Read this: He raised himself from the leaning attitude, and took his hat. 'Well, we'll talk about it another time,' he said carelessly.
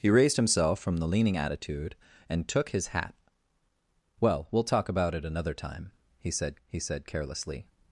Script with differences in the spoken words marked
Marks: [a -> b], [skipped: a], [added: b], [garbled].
He raised himself from the leaning attitude, and took his hat. 'Well, we'll talk about it another time,' he said [added: he said] carelessly.